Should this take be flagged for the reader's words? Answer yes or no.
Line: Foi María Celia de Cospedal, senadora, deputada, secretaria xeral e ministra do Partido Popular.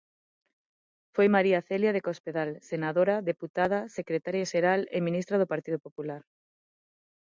no